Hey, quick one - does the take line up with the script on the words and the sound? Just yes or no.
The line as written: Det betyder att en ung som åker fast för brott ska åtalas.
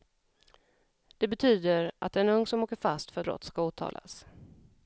yes